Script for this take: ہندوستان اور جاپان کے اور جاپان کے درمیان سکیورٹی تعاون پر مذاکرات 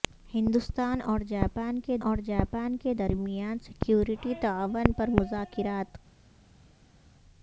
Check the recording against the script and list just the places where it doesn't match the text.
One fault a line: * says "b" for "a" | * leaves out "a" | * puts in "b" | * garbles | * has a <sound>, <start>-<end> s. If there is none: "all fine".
all fine